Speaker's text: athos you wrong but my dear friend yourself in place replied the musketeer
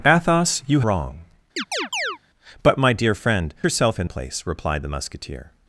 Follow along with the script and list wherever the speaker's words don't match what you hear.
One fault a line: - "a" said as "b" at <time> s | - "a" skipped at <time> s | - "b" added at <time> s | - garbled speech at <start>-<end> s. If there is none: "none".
none